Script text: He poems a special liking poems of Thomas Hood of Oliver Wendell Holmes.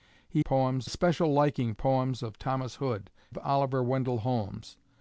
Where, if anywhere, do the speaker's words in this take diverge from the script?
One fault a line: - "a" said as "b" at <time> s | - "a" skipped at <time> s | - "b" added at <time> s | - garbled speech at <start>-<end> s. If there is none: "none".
none